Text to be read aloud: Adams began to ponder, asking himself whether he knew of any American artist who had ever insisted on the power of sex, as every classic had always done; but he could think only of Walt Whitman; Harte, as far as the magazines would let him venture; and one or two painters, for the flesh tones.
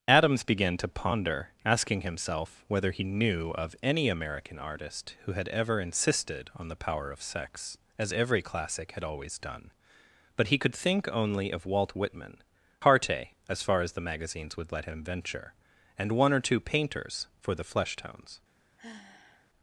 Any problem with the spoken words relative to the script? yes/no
no